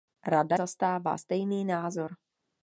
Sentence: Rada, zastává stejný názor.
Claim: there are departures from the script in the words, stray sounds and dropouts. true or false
false